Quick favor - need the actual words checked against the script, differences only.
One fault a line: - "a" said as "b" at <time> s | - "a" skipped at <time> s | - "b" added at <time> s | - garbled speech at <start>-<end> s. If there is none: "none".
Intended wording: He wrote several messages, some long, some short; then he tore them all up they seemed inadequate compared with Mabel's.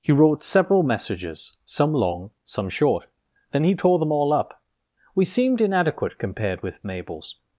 - "they" said as "we" at 5.1 s